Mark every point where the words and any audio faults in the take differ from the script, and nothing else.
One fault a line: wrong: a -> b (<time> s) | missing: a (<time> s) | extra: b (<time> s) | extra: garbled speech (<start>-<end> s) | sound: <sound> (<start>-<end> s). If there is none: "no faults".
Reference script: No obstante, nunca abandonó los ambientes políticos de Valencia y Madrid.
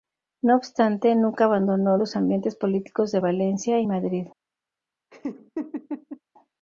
sound: laugh (5.1-6.2 s)